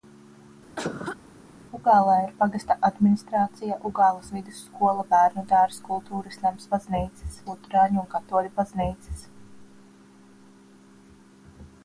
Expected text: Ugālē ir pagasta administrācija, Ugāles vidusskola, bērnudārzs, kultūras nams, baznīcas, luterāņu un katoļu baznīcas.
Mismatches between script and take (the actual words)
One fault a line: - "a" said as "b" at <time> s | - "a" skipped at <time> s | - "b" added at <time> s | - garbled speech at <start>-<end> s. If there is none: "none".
none